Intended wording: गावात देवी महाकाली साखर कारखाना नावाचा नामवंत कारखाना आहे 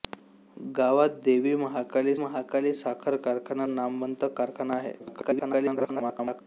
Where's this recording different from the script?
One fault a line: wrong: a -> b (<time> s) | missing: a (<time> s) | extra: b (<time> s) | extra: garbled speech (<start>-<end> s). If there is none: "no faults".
extra: महाकाली (2.2 s)
missing: नावाचा (3.7 s)
extra: garbled speech (5.0-6.4 s)